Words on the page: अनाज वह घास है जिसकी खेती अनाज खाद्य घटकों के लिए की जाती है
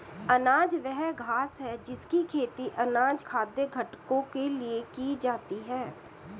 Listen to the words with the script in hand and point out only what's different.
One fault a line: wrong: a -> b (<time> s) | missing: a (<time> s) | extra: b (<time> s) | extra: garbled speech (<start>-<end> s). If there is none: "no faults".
no faults